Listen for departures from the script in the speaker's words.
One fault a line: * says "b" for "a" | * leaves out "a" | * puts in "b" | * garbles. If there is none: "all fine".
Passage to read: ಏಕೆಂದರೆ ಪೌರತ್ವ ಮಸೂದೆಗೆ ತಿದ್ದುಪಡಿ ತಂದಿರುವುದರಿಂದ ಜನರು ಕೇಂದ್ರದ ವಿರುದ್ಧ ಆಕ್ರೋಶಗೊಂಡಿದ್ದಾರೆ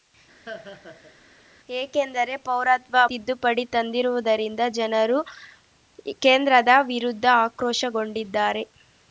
* leaves out "ಮಸೂದೆಗೆ"